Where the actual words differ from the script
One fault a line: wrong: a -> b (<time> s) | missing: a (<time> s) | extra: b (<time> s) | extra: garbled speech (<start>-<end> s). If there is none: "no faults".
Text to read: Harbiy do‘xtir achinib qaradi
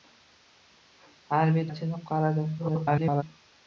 missing: do‘xtir (1.7 s)
extra: garbled speech (2.6-3.2 s)